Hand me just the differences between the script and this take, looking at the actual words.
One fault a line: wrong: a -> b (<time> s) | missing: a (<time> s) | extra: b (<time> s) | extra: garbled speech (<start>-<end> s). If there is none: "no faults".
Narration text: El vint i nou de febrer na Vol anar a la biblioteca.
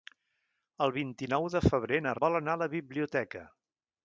no faults